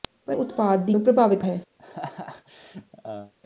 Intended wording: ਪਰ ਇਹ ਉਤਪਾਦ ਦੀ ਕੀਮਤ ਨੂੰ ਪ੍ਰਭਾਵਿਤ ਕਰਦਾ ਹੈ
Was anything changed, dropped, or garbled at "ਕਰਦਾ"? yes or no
yes